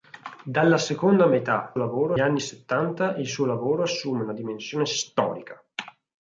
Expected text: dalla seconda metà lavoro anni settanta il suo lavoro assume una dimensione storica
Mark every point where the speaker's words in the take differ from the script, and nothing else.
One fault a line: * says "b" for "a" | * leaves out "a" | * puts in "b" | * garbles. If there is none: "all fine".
all fine